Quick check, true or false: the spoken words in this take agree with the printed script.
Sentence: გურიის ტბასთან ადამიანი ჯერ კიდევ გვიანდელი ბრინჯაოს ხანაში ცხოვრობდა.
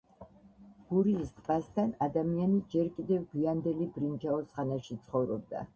true